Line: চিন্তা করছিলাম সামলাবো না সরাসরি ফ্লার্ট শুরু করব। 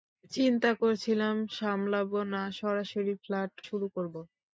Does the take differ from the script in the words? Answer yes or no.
no